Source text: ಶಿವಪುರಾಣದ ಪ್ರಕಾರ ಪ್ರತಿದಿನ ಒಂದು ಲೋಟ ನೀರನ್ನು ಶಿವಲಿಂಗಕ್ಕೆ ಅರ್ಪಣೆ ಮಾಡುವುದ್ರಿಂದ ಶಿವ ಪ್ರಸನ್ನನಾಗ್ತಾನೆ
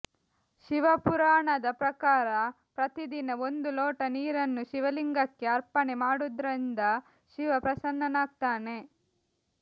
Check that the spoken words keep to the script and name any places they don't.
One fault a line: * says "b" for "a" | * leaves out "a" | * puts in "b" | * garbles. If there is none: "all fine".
all fine